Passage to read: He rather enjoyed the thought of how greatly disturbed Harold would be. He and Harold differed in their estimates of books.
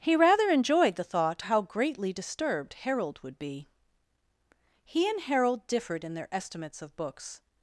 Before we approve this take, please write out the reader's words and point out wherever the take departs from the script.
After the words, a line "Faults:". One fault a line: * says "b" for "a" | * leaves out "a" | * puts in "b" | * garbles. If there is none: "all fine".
He rather enjoyed the thought how greatly disturbed Harold would be. He and Harold differed in their estimates of books.
Faults:
* leaves out "of"